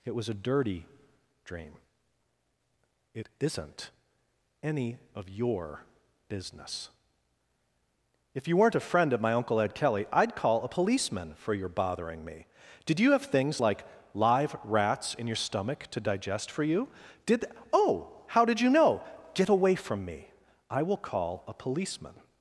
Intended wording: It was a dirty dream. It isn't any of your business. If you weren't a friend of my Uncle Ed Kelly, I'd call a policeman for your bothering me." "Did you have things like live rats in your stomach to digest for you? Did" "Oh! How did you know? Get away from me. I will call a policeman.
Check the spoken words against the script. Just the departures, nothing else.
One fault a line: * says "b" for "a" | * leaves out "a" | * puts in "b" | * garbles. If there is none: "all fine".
all fine